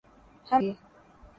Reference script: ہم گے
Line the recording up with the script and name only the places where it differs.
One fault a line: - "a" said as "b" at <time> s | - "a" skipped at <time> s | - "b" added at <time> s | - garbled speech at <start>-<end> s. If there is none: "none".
none